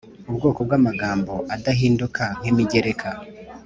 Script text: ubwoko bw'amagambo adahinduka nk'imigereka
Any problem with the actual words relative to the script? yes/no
no